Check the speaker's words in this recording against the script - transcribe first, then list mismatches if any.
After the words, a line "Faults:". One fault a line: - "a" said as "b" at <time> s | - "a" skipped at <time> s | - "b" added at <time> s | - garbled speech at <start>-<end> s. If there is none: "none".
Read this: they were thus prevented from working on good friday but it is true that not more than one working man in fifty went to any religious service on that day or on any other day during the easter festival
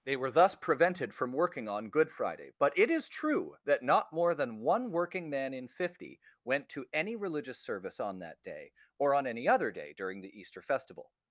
they were thus prevented from working on good friday but it is true that not more than one working man in fifty went to any religious service on that day or on any other day during the easter festival
Faults:
none